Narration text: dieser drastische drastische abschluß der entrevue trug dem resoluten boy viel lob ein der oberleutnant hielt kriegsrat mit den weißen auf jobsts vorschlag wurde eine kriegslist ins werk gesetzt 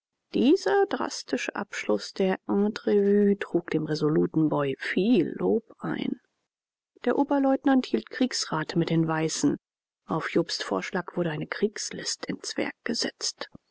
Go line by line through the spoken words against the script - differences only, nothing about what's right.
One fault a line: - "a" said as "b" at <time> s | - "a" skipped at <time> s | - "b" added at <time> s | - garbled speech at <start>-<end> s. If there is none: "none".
- "drastische" skipped at 1.6 s